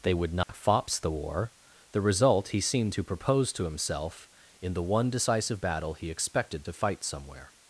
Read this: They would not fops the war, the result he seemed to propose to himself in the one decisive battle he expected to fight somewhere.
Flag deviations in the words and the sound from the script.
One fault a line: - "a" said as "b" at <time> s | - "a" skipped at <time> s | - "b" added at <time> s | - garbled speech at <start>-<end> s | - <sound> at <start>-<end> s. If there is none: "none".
- dropout at 0.4-0.5 s